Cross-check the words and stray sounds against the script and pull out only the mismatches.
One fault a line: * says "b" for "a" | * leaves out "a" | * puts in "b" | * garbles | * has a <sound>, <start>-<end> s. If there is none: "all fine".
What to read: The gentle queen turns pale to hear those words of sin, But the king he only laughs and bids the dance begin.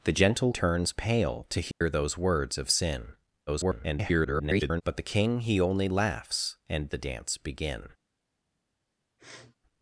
* leaves out "queen"
* has a dropout, 1.7-1.8 s
* garbles
* leaves out "bids"
* has a sniff, 9.2-9.6 s